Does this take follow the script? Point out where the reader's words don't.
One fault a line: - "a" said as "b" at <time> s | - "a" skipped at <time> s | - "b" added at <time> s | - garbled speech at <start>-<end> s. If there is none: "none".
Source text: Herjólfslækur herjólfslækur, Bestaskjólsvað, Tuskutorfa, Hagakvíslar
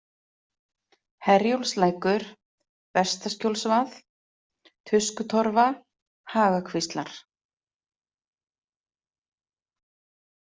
- "herjólfslækur" skipped at 2.2 s